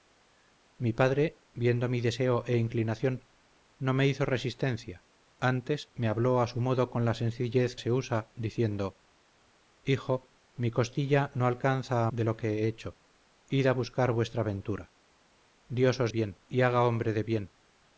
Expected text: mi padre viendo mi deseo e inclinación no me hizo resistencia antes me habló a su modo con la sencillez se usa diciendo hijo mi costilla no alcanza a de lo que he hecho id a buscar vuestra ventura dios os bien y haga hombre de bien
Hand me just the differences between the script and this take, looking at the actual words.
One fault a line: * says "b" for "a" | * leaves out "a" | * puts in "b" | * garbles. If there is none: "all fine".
all fine